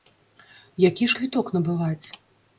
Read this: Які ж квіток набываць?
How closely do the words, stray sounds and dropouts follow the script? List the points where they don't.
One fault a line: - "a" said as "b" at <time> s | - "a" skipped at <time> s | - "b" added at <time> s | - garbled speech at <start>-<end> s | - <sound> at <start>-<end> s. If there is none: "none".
none